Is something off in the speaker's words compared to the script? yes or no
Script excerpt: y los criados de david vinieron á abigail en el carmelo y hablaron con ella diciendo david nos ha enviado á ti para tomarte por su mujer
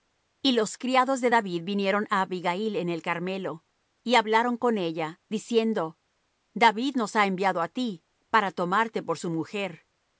no